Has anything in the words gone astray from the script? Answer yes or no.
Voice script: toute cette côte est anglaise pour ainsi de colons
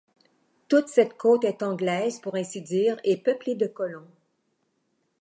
yes